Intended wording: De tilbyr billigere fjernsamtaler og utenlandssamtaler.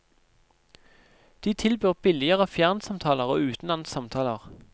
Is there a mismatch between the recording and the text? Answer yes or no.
no